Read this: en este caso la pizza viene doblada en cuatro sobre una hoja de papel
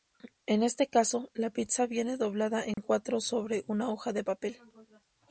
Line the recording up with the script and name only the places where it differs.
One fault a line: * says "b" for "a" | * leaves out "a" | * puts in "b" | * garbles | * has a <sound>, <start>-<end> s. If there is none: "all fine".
* has a dropout, 2.7-2.8 s